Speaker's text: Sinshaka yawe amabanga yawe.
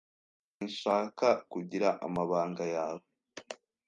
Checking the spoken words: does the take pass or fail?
fail